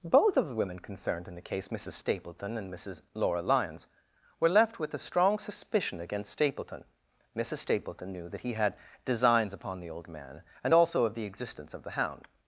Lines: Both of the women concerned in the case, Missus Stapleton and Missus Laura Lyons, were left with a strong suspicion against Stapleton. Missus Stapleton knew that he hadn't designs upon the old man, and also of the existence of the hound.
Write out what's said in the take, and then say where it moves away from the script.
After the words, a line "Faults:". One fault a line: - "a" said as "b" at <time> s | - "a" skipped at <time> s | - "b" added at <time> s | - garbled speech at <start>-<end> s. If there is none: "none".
Both of the women concerned in the case, Missus Stapleton and Missus Laura Lyons, were left with a strong suspicion against Stapleton. Missus Stapleton knew that he had designs upon the old man, and also of the existence of the hound.
Faults:
- "hadn't" said as "had" at 8.5 s